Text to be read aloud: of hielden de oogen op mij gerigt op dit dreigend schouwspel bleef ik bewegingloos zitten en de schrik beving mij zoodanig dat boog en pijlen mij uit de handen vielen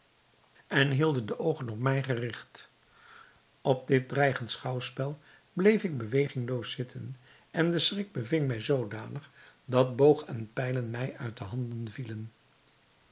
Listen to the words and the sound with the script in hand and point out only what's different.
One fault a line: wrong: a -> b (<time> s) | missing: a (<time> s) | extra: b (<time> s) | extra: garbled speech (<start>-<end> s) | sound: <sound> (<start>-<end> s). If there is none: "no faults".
wrong: of -> en (0.7 s)